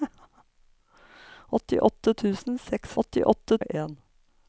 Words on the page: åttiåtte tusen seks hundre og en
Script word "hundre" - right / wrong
wrong